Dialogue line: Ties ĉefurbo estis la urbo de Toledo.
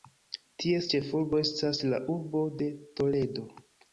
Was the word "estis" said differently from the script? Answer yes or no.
yes